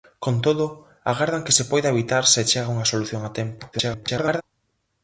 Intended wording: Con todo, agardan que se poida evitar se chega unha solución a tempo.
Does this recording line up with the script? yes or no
no